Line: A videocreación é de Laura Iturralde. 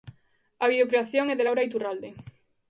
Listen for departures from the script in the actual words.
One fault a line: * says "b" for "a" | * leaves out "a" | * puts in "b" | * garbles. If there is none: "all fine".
all fine